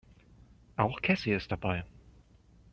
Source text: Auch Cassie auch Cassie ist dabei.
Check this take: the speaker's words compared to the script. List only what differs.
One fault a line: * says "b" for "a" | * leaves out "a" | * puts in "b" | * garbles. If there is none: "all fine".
* leaves out "auch Cassie"